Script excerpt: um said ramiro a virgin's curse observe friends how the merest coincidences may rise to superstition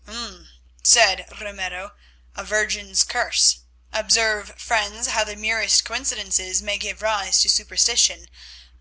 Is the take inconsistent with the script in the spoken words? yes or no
yes